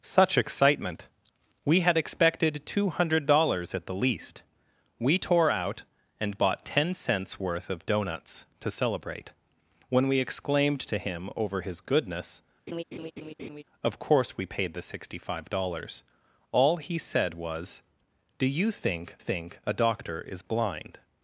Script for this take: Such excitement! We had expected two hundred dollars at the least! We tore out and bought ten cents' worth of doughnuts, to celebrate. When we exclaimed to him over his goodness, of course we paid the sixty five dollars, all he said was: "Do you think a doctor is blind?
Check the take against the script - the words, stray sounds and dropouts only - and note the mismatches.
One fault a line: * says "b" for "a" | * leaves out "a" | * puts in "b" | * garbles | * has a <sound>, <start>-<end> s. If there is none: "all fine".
* has a laugh, 12.7-13.6 s
* puts in "think"